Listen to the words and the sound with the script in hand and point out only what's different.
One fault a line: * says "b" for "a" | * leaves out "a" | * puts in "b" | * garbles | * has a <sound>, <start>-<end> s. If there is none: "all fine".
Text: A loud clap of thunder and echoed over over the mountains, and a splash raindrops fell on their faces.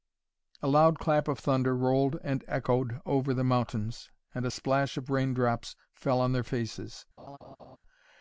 * puts in "rolled"
* leaves out "over"
* puts in "of"
* has a laugh, 7.2-7.8 s